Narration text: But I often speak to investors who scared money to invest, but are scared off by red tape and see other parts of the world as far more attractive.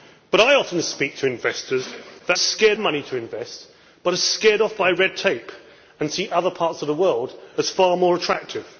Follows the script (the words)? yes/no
yes